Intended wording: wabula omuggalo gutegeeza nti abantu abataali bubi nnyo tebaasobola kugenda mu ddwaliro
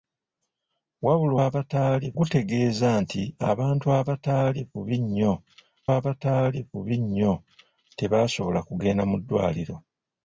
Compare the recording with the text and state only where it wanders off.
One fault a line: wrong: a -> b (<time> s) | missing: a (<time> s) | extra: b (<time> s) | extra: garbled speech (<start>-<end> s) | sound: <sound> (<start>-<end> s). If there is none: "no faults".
wrong: omuggalo -> abataali (1.4 s)
extra: abataali bubi nnyo (6.0 s)